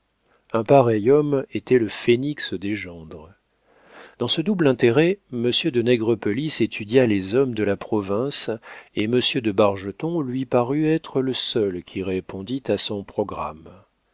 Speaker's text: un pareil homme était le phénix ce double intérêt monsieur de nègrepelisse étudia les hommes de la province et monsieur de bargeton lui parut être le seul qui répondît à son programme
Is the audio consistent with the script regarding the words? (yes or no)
no